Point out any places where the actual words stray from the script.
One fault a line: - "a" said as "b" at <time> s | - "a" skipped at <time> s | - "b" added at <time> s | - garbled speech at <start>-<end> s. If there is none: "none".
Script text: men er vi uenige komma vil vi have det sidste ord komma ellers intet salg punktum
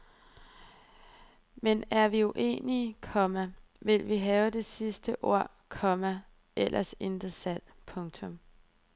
none